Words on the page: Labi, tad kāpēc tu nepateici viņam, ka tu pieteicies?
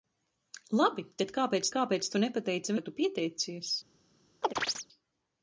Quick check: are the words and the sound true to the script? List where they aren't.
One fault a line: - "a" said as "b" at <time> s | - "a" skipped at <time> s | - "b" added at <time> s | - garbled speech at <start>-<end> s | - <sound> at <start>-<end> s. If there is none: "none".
- "kāpēc" added at 1.7 s
- "viņam" skipped at 2.8 s
- chirp at 4.4-4.9 s